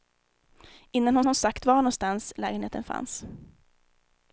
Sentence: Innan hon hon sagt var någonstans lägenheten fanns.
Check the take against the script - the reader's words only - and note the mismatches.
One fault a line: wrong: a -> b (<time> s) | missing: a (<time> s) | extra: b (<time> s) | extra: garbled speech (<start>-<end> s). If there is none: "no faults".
no faults